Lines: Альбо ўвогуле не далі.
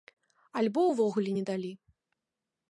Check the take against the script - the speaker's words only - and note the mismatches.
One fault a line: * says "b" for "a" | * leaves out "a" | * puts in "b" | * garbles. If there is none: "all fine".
all fine